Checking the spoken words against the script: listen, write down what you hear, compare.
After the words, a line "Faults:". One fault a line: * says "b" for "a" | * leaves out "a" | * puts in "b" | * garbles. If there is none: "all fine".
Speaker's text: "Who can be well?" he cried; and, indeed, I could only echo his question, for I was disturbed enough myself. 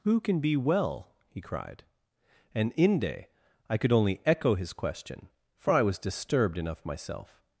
"Who can be well?" he cried; and, inde, I could only echo his question, for I was disturbed enough myself.
Faults:
* says "inde" for "indeed"